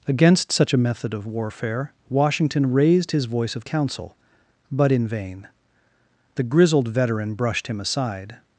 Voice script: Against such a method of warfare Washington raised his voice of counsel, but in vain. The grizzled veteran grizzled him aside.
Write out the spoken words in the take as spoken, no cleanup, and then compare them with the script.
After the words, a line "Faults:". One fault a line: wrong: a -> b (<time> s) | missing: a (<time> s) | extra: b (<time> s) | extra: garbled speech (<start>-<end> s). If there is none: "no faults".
Against such a method of warfare Washington raised his voice of counsel, but in vain. The grizzled veteran brushed him aside.
Faults:
wrong: grizzled -> brushed (7.3 s)